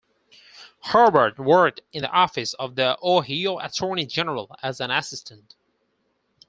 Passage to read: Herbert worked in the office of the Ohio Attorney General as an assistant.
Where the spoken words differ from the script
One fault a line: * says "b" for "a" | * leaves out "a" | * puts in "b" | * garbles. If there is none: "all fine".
all fine